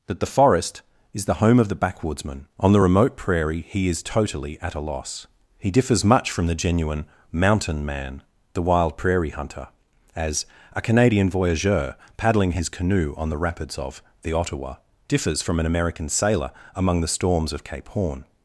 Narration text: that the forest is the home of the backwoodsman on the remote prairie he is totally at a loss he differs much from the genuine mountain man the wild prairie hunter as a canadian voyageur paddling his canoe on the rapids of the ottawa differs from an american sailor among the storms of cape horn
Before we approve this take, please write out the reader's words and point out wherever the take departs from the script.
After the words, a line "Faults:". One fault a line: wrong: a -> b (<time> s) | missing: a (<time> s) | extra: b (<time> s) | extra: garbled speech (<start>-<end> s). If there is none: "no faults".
that the forest is the home of the backwoodsman on the remote prairie he is totally at a loss he differs much from the genuine mountain man the wild prairie hunter as a canadian voyageur paddling his canoe on the rapids of the ottawa differs from an american sailor among the storms of cape horn
Faults:
no faults